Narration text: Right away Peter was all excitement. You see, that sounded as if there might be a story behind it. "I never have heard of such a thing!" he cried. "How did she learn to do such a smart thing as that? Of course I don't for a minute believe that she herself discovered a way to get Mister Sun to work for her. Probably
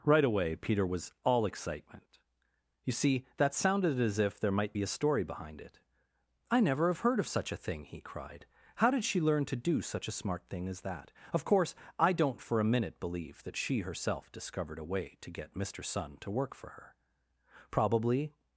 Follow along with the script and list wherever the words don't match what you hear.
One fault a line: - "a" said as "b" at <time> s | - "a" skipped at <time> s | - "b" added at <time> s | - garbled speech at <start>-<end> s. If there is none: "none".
none